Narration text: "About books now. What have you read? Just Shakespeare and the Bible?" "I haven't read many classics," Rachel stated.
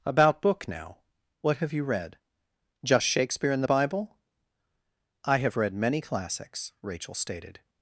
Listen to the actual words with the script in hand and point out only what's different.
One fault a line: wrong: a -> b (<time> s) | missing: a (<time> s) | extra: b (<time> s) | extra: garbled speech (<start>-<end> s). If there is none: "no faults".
wrong: books -> book (0.4 s)
wrong: haven't -> have (5.4 s)